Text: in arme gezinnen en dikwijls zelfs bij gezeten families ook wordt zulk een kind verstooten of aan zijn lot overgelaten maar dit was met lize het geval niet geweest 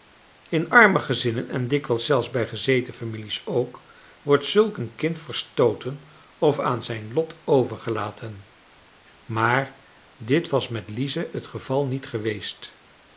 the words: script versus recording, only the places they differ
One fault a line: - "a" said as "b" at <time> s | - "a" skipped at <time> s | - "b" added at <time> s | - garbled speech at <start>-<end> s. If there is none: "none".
none